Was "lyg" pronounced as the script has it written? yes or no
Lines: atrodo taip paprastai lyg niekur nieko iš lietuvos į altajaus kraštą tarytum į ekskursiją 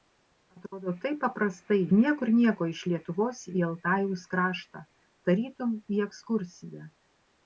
no